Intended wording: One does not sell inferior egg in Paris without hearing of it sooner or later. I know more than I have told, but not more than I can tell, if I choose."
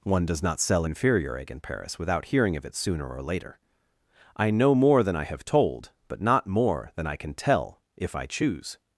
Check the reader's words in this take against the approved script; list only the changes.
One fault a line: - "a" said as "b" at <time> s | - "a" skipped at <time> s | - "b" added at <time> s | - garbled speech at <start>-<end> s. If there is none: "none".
none